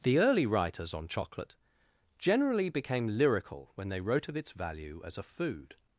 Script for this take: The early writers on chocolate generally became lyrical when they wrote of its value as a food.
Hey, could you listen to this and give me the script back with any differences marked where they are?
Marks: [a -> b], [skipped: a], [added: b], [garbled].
The early writers on chocolate generally became lyrical when they wrote of its value as a food.